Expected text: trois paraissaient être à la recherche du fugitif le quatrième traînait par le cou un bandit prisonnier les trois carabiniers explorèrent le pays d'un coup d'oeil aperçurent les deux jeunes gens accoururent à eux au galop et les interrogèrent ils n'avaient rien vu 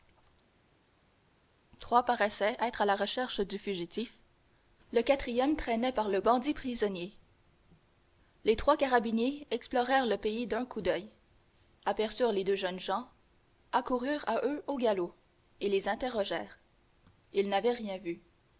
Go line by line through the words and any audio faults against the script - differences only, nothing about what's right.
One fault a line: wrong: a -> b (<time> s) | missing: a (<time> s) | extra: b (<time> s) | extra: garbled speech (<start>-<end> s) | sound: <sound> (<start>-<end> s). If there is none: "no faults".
missing: cou un (6.2 s)